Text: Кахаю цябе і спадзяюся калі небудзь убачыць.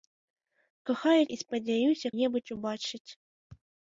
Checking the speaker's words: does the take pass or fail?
fail